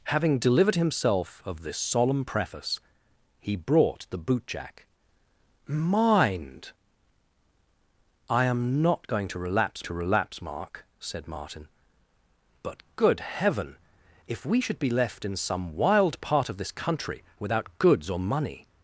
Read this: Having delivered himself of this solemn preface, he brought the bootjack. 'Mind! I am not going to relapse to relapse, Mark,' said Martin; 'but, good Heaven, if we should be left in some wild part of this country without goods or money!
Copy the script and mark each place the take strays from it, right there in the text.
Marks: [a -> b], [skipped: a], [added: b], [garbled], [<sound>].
Having delivered himself of this solemn preface, he brought the bootjack. 'Mind! I am not going to relapse to relapse, Mark,' said Martin; 'but, good Heaven, if we should be left in some wild part of this country without goods or money!